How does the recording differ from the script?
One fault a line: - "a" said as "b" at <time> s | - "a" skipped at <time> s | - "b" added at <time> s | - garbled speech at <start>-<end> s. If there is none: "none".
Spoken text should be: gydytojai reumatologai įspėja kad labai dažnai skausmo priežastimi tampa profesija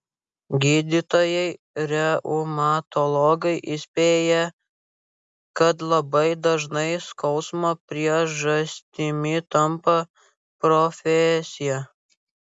none